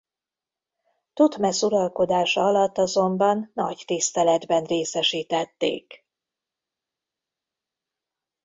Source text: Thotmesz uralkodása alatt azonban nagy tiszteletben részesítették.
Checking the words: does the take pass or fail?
pass